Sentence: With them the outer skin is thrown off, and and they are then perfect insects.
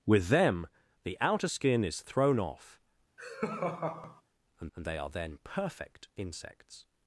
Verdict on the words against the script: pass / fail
pass